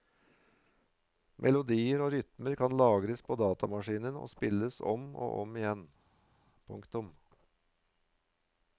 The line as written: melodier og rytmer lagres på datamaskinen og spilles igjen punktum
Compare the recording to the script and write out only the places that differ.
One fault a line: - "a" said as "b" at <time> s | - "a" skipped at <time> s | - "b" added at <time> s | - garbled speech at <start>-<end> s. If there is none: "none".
- "kan" added at 2.6 s
- "om og om" added at 4.9 s